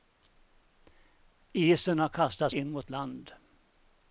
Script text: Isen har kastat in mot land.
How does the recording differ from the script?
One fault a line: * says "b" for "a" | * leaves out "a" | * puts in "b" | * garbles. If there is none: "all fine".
all fine